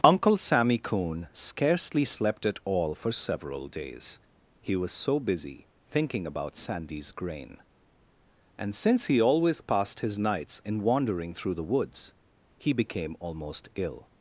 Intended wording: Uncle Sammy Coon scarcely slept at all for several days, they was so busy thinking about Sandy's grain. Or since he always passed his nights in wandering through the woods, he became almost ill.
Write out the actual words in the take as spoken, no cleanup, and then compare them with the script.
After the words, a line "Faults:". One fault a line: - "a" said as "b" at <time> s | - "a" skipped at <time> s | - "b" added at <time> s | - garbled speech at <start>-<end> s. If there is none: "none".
Uncle Sammy Coon scarcely slept at all for several days, he was so busy thinking about Sandy's grain. And since he always passed his nights in wandering through the woods, he became almost ill.
Faults:
- "they" said as "he" at 4.6 s
- "Or" said as "And" at 8.6 s